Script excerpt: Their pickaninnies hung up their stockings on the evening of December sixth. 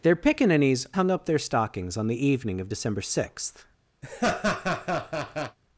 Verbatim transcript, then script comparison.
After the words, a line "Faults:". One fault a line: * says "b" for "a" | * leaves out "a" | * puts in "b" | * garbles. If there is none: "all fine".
Their pickaninnies hung up their stockings on the evening of December sixth.
Faults:
all fine